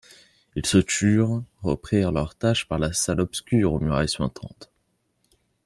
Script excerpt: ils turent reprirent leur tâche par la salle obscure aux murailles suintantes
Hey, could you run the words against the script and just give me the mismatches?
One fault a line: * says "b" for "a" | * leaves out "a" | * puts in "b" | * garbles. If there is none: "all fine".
* puts in "se"